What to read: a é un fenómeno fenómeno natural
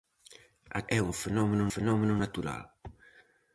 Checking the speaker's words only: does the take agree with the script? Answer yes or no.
yes